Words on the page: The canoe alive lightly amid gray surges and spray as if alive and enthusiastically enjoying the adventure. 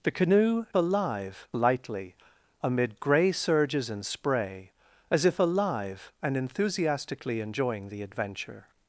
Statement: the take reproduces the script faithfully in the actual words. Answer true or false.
true